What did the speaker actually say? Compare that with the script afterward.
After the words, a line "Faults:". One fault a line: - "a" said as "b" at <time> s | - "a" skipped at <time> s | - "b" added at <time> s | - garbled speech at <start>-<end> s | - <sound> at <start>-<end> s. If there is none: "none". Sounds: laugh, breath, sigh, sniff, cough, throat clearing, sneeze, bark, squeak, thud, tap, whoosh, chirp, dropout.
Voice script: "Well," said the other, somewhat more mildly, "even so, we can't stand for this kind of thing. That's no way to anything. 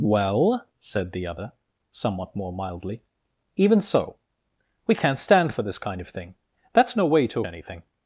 "Well," said the other, somewhat more mildly, "even so, we can't stand for this kind of thing. That's no way to anything.
Faults:
none